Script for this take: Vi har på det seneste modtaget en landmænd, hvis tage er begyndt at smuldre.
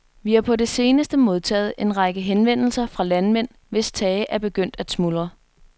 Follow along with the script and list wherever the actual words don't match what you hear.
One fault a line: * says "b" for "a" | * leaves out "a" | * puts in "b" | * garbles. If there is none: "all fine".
* puts in "række henvendelser fra"